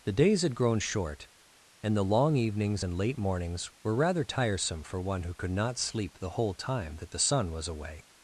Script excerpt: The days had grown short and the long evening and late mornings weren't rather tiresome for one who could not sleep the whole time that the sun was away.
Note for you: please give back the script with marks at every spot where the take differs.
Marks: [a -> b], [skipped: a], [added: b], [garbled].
The days had grown short and the long [evening -> evenings] and late mornings [weren't -> were] rather tiresome for one who could not sleep the whole time that the sun was away.